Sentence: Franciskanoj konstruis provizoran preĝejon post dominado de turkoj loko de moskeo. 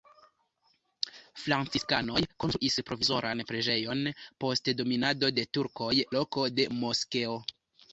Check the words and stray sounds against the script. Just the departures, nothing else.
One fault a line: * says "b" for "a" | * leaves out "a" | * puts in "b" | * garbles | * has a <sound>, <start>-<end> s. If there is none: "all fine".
all fine